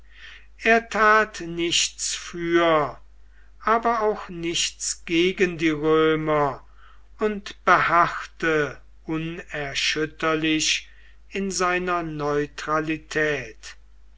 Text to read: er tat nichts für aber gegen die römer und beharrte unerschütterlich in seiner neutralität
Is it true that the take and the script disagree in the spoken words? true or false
true